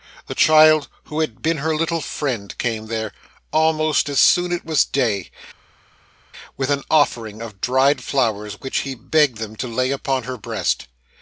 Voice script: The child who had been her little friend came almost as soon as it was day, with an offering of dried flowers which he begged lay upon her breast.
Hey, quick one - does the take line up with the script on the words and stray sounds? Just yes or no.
no